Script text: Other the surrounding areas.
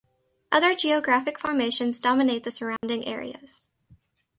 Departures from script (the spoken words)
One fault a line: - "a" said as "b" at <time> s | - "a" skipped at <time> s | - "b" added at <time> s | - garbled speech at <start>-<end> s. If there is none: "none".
- "geographic formations dominate" added at 0.7 s